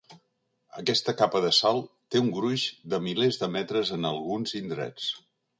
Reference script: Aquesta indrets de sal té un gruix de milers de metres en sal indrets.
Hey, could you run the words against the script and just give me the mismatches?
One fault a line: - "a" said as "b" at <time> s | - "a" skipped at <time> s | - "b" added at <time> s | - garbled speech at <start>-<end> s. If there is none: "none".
- "indrets" said as "capa" at 1.2 s
- "sal" said as "alguns" at 4.2 s